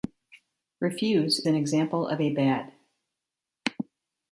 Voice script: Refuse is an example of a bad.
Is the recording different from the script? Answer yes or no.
yes